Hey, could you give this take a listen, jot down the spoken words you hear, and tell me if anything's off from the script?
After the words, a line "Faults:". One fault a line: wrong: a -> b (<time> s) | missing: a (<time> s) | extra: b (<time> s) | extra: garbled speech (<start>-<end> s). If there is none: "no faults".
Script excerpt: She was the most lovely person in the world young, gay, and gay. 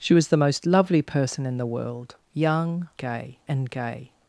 She was the most lovely person in the world young, gay, and gay.
Faults:
no faults